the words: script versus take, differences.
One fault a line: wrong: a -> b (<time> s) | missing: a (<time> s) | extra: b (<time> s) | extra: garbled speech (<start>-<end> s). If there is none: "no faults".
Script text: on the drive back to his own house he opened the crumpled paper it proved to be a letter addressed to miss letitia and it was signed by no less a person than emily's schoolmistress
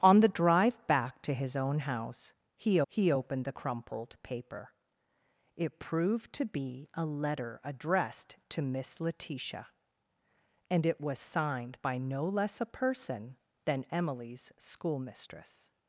extra: he (2.9 s)